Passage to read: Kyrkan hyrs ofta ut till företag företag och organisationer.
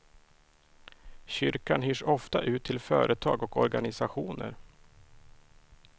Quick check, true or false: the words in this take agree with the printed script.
false